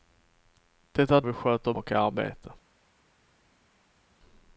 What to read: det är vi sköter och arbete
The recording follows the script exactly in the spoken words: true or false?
true